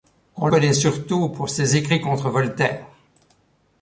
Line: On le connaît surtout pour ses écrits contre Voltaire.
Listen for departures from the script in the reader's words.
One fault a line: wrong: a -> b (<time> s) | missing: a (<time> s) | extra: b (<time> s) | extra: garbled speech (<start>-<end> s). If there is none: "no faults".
missing: le (0.5 s)